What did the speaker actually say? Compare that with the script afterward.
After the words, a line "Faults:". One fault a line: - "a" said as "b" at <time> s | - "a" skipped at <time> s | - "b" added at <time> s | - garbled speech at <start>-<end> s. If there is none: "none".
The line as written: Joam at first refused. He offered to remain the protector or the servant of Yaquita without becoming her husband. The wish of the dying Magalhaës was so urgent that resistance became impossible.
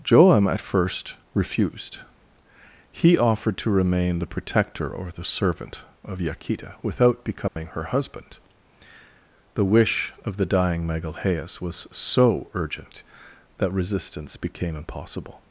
Joam at first refused. He offered to remain the protector or the servant of Yaquita without becoming her husband. The wish of the dying Magalhaës was so urgent that resistance became impossible.
Faults:
none